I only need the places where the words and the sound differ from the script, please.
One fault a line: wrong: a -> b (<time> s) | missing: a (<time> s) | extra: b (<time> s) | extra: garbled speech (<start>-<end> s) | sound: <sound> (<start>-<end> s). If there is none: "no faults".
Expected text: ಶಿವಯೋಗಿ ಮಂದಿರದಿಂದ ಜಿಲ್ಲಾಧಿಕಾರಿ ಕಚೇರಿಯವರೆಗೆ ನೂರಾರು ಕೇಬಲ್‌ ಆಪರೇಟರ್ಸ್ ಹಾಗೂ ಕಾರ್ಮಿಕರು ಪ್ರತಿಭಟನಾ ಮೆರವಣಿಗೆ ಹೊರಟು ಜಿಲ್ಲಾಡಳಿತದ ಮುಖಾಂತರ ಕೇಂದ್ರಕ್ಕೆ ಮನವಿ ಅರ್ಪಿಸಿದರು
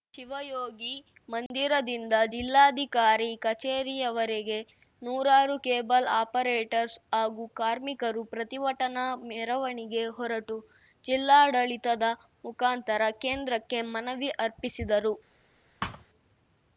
sound: dropout (1.5-1.5 s)
sound: thud (15.8-16.1 s)